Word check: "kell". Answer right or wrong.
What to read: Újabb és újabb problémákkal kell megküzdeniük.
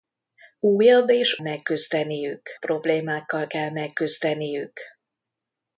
right